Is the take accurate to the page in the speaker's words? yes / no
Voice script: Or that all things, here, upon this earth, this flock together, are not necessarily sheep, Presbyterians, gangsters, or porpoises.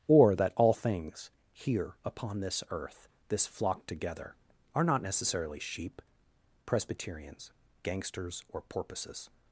yes